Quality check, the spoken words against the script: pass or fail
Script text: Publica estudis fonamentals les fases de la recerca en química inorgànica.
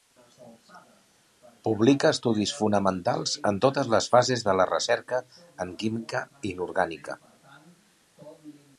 fail